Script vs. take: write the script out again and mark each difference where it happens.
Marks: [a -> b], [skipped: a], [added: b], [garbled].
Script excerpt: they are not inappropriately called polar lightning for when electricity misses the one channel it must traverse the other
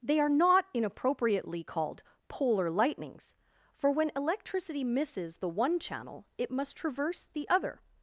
they are not inappropriately called polar [lightning -> lightnings] for when electricity misses the one channel it must traverse the other